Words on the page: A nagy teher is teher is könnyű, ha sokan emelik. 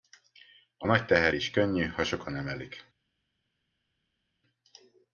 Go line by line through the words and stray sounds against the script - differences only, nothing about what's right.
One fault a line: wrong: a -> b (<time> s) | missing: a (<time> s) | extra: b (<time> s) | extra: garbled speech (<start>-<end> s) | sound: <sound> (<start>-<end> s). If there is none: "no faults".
missing: teher is (1.5 s)